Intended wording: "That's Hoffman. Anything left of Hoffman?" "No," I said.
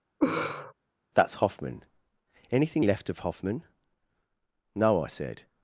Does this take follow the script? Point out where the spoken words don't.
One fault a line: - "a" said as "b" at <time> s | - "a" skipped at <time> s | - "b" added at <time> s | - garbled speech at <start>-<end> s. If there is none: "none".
none